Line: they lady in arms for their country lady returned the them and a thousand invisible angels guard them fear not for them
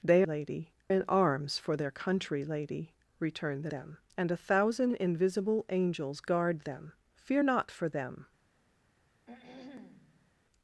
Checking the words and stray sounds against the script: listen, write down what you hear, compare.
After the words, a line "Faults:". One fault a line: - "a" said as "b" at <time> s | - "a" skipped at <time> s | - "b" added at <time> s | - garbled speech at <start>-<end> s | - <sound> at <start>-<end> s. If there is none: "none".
they lady in arms for their country lady returned the them and a thousand invisible angels guard them fear not for them
Faults:
- throat clearing at 9.3-10.3 s